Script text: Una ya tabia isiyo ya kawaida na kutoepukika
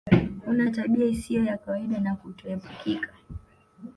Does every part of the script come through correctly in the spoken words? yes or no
yes